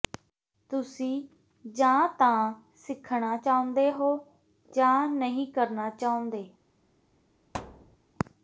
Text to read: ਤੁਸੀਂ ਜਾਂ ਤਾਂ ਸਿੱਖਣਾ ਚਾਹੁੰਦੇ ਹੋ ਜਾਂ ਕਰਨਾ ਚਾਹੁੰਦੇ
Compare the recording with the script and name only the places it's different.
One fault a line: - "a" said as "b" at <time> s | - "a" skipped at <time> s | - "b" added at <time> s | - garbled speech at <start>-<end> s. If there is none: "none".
- "ਨਹੀਂ" added at 5.1 s